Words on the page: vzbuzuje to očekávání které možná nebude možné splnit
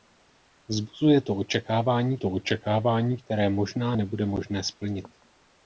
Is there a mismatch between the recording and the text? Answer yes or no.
yes